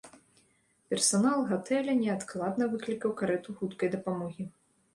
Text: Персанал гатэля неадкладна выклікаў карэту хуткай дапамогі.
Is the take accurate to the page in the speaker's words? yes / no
yes